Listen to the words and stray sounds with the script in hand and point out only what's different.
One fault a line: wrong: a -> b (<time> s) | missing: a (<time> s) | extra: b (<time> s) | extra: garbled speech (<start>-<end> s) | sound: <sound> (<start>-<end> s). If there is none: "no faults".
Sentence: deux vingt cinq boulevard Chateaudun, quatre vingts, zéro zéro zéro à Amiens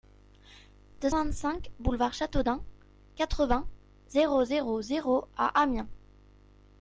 no faults